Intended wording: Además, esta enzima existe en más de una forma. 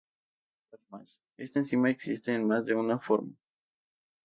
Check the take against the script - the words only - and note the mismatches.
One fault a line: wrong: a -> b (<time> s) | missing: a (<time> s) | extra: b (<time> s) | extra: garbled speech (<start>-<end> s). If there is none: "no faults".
no faults